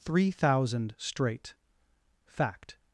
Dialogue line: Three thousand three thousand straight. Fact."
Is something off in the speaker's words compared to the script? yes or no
yes